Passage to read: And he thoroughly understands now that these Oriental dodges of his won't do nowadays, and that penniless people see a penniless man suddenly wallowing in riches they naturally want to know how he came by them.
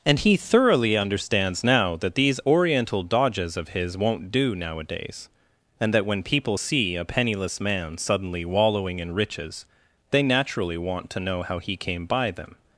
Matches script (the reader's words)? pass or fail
fail